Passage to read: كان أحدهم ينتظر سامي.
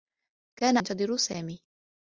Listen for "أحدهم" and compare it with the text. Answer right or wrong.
wrong